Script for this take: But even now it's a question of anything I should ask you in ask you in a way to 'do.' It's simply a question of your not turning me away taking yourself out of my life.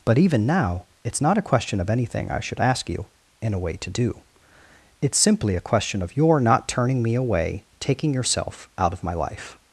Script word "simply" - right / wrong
right